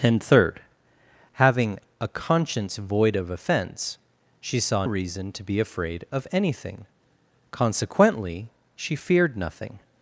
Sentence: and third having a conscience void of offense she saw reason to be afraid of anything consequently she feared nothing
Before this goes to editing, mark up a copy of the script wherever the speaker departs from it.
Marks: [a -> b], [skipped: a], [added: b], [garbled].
and third having a conscience void of offense she saw reason to be afraid of anything consequently she feared nothing